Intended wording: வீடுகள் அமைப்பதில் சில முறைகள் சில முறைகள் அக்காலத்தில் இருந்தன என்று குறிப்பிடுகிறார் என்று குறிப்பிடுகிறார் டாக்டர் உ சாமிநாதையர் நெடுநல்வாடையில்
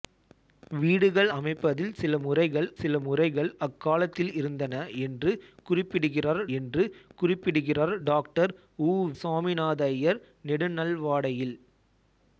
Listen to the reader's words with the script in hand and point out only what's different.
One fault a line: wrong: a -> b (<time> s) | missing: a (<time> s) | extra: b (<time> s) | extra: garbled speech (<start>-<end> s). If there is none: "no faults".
no faults